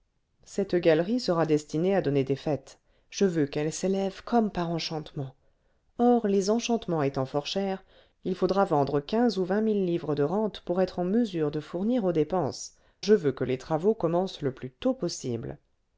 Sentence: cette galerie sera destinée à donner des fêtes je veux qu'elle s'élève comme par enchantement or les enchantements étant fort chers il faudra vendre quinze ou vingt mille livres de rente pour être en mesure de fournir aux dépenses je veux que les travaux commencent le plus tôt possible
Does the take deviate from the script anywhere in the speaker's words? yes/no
no